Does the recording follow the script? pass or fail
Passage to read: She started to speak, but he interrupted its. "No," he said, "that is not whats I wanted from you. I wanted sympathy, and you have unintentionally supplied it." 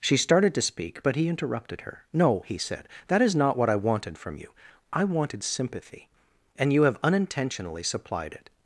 fail